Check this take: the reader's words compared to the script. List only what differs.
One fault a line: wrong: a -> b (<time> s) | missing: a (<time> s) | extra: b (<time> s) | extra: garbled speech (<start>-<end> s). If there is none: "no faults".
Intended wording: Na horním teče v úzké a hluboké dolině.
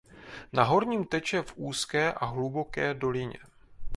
no faults